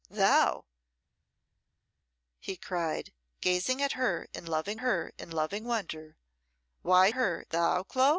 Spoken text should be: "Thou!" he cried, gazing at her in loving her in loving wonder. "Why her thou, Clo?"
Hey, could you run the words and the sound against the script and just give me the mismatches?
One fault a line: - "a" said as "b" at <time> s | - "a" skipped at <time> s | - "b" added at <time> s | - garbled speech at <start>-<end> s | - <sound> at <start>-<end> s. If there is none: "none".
none